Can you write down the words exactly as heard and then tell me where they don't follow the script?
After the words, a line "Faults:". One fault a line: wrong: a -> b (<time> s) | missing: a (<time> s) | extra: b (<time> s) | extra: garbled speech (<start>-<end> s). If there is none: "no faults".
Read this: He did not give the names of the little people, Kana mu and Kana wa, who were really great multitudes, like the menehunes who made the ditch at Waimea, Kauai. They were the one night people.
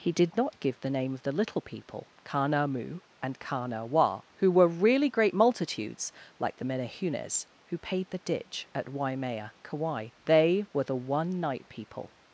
He did not give the name of the little people, Kana mu and Kana wa, who were really great multitudes, like the menehunes who paid the ditch at Waimea, Kauai. They were the one night people.
Faults:
wrong: names -> name (0.9 s)
wrong: made -> paid (7.8 s)